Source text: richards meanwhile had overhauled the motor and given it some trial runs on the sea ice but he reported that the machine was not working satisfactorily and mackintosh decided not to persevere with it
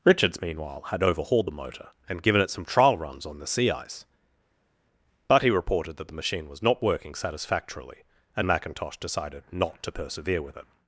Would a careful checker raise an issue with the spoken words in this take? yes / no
no